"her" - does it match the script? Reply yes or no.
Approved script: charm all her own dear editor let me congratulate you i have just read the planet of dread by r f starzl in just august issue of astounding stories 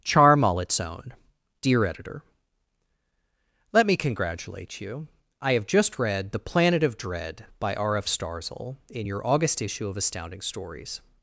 no